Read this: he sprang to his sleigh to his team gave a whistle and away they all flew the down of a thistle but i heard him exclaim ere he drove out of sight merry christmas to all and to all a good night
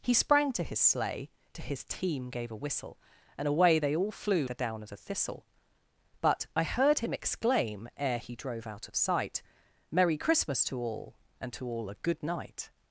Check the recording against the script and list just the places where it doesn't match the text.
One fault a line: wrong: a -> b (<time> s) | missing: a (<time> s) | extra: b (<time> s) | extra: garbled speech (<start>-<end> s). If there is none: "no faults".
no faults